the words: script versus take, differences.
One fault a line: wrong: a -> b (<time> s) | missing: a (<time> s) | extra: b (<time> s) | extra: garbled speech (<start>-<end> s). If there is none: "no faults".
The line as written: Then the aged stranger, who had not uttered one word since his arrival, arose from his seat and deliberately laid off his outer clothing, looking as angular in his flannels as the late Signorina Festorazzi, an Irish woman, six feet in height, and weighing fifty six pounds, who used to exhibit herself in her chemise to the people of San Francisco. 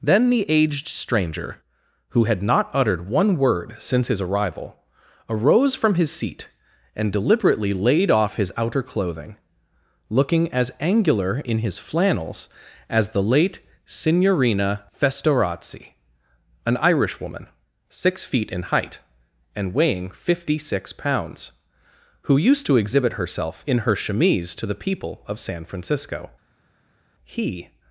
extra: He (27.2 s)